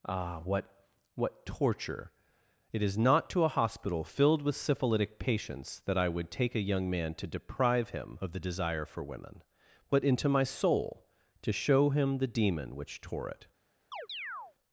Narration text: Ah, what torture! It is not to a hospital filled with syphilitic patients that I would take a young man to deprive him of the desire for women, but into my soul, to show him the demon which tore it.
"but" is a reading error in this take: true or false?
false